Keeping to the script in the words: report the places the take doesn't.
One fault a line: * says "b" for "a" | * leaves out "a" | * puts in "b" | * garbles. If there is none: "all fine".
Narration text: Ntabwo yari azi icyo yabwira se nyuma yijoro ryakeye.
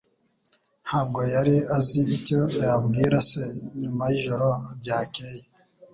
all fine